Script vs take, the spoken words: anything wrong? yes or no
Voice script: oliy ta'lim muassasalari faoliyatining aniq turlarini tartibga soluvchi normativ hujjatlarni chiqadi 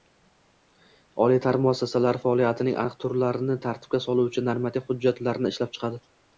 yes